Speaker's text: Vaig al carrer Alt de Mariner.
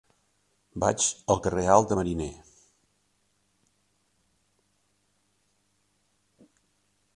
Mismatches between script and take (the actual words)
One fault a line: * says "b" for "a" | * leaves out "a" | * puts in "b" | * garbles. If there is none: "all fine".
all fine